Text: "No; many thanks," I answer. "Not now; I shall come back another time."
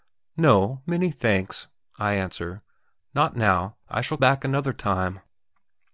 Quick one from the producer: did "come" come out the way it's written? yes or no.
no